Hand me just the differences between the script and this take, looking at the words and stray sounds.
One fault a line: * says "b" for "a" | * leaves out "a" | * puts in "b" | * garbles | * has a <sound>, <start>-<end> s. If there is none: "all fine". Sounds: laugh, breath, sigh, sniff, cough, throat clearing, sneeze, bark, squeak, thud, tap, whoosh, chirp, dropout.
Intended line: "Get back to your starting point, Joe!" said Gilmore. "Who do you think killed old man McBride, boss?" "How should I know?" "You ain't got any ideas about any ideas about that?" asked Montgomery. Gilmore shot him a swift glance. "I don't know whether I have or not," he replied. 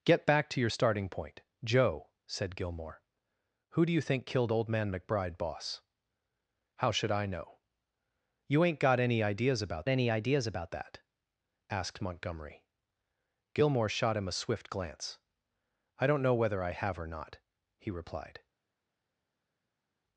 all fine